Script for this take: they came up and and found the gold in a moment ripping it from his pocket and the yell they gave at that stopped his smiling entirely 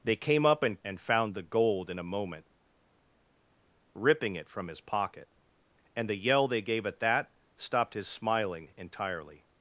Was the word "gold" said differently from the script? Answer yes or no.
no